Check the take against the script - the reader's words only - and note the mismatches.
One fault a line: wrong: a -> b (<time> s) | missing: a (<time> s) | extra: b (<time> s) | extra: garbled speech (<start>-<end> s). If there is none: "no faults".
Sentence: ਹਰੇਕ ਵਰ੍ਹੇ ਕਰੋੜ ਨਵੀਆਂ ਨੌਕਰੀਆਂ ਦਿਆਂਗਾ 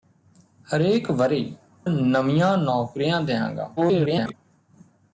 missing: ਕਰੋੜ (1.4 s)
extra: garbled speech (3.8-4.3 s)